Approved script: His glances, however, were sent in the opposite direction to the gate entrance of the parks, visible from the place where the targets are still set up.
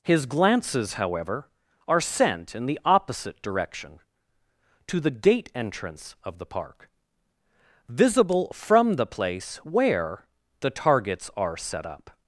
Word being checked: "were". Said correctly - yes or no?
no